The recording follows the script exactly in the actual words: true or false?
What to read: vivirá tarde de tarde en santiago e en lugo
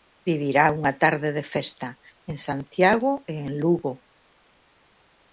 false